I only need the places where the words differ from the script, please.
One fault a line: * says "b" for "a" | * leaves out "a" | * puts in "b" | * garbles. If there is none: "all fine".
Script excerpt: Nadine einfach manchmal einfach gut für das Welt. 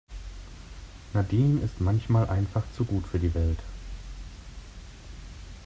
* says "ist" for "einfach"
* puts in "zu"
* says "die" for "das"